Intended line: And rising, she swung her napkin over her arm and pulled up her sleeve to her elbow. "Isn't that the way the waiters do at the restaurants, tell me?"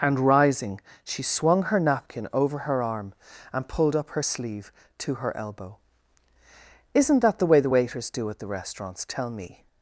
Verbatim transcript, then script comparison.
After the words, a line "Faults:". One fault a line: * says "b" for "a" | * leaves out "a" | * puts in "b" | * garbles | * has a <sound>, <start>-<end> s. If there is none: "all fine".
And rising, she swung her napkin over her arm and pulled up her sleeve to her elbow. "Isn't that the way the waiters do at the restaurants, tell me?"
Faults:
all fine